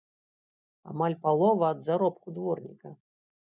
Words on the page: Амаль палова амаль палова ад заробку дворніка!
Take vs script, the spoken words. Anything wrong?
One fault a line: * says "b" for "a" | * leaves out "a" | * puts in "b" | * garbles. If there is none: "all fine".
* leaves out "амаль палова"